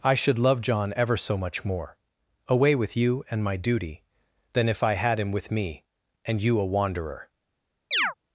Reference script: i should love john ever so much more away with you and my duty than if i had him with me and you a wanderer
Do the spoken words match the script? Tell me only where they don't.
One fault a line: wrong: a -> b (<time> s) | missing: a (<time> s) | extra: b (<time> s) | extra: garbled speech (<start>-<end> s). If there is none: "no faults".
no faults